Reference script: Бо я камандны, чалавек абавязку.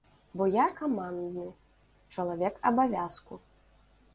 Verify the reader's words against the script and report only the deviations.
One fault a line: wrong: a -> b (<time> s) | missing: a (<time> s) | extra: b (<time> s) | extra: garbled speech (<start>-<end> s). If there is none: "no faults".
no faults